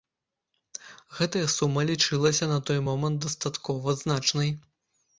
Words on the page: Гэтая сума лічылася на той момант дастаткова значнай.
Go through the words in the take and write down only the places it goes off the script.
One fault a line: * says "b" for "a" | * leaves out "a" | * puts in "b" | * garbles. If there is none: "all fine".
all fine